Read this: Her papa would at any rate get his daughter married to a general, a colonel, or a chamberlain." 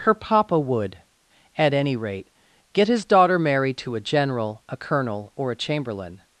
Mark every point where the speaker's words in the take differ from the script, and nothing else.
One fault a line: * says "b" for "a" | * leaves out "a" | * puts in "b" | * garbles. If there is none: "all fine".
all fine